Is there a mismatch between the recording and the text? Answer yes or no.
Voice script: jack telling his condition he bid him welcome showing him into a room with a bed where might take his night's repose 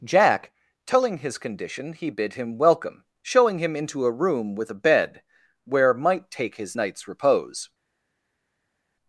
no